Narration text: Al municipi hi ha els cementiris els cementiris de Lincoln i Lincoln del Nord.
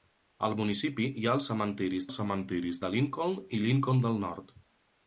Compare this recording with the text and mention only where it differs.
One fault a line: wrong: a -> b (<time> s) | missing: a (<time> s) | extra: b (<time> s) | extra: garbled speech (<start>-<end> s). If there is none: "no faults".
no faults